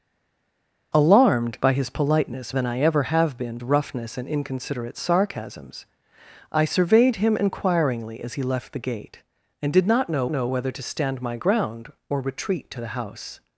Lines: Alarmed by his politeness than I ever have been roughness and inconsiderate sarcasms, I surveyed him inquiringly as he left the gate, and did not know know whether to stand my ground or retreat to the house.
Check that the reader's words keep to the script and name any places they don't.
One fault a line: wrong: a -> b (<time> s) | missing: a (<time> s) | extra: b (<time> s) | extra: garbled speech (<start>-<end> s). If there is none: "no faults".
no faults